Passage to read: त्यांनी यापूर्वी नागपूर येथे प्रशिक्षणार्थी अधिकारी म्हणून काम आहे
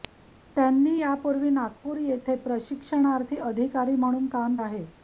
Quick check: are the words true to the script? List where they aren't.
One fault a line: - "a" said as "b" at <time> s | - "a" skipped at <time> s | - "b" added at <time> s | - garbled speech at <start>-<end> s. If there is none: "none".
none